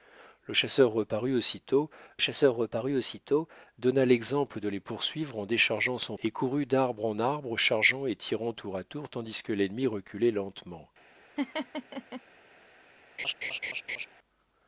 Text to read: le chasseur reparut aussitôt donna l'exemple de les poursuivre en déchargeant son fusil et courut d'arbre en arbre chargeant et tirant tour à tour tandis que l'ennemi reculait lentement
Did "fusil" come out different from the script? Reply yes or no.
yes